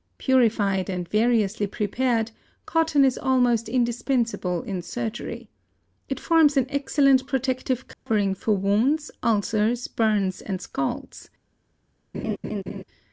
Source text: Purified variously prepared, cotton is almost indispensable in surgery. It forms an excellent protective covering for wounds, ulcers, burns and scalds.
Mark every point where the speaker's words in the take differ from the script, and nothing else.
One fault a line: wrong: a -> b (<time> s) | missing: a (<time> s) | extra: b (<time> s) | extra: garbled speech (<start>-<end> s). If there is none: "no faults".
extra: and (0.9 s)